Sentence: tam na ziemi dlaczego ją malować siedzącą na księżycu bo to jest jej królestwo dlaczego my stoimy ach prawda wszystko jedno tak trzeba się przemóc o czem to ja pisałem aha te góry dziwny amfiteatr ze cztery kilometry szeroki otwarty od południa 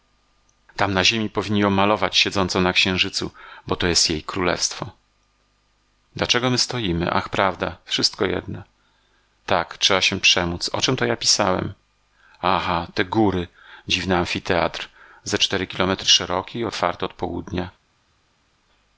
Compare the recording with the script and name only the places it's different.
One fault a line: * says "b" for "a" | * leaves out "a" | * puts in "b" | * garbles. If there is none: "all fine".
* says "powinni" for "dlaczego"